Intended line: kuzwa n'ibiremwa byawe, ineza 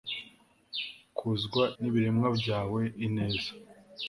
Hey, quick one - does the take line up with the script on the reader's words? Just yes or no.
yes